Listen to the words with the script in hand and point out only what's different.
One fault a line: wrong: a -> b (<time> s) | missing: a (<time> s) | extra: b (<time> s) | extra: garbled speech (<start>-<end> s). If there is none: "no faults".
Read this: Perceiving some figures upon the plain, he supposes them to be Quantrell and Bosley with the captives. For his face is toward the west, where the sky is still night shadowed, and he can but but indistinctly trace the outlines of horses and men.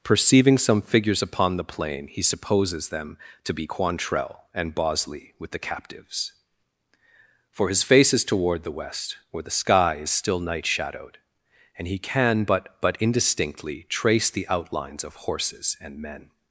no faults